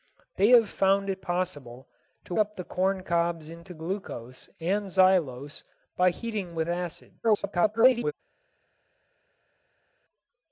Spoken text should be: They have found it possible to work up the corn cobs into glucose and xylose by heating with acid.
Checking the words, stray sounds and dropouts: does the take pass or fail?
fail